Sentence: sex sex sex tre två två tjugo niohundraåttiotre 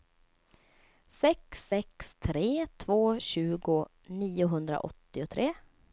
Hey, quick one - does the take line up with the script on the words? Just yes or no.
no